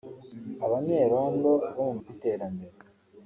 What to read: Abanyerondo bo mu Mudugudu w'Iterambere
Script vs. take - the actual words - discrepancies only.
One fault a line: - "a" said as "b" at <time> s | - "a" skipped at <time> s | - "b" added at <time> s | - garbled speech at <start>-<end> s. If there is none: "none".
- "Mudugudu" skipped at 1.9 s